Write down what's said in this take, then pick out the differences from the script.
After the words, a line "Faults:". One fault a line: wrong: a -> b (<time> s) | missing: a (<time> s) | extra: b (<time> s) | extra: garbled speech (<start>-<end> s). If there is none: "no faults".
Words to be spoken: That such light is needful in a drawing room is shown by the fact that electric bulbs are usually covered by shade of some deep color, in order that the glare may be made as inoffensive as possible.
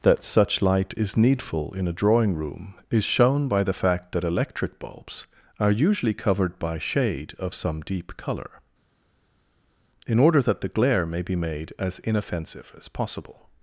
That such light is needful in a drawing room is shown by the fact that electric bulbs are usually covered by shade of some deep color, in order that the glare may be made as inoffensive as possible.
Faults:
no faults